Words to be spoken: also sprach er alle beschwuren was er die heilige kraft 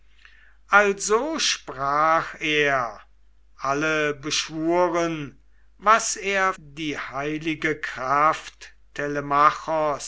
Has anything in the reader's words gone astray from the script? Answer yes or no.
no